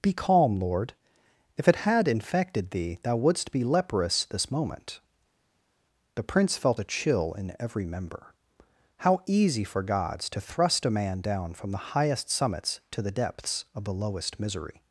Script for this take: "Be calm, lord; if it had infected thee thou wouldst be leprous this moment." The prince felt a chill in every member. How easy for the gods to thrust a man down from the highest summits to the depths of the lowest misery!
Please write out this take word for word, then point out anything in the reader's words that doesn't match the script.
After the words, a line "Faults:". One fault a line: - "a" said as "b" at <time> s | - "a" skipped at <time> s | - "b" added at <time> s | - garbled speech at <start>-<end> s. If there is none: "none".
"Be calm, lord; if it had infected thee thou wouldst be leprous this moment." The prince felt a chill in every member. How easy for gods to thrust a man down from the highest summits to the depths of the lowest misery!
Faults:
- "the" skipped at 9.8 s